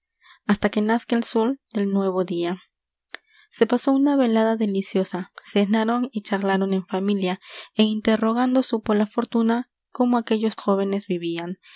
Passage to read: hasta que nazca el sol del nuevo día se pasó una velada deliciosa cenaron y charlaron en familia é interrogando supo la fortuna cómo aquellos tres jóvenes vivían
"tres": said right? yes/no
no